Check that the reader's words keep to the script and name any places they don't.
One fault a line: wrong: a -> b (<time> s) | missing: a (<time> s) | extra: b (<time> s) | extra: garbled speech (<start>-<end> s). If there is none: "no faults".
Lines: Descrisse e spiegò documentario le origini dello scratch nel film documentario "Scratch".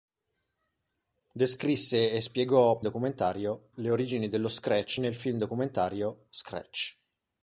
no faults